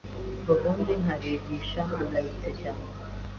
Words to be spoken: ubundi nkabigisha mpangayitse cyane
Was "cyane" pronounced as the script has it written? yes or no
yes